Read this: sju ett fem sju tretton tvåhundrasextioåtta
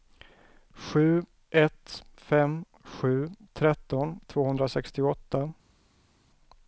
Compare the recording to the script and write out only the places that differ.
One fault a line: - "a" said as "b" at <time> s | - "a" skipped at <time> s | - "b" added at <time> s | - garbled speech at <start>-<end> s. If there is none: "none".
none